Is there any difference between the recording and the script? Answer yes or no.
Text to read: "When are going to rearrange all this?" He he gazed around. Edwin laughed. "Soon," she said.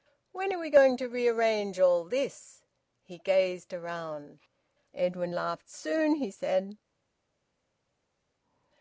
yes